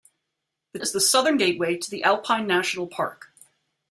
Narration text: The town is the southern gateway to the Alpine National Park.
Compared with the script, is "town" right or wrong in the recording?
wrong